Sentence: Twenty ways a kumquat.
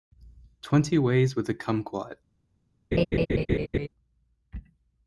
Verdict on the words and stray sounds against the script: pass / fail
fail